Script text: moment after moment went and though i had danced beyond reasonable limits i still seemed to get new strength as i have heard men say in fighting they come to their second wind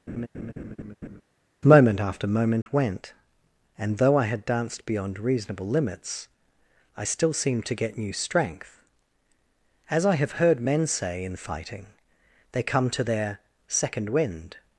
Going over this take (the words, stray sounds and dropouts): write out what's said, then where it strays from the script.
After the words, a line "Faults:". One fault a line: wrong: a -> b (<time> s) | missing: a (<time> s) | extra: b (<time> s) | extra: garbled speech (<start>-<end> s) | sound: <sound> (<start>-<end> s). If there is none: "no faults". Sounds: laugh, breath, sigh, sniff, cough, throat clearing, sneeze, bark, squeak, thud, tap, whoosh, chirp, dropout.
moment after moment went and though i had danced beyond reasonable limits i still seemed to get new strength as i have heard men say in fighting they come to their second wind
Faults:
sound: laugh (0.1-1.2 s)
sound: dropout (2.6-2.7 s)